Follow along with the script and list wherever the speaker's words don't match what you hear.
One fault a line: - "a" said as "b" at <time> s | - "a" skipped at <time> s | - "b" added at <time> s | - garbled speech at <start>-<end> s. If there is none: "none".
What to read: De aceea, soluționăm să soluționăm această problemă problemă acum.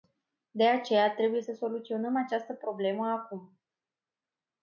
- "soluționăm" said as "trebuie" at 1.1 s
- "problemă" skipped at 3.1 s